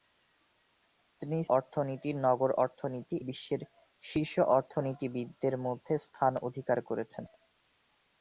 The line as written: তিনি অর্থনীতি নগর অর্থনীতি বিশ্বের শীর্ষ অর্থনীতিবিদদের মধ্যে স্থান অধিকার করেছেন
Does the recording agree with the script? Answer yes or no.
yes